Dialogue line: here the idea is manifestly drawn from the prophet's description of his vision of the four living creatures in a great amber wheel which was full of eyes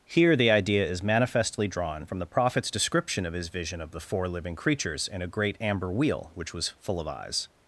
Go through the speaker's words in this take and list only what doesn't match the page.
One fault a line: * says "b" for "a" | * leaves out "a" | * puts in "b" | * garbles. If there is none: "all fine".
all fine